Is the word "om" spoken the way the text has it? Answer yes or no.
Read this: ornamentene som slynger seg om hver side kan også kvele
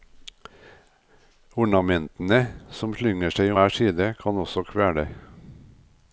no